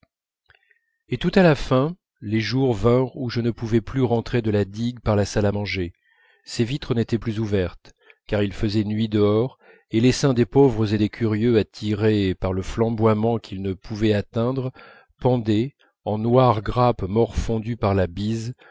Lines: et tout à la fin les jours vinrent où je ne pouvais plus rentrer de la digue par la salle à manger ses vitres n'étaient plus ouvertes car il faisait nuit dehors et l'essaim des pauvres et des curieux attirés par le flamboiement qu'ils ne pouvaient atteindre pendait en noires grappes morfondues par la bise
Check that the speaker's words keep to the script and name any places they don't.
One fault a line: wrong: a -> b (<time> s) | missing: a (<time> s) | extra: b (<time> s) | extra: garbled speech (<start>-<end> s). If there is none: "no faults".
no faults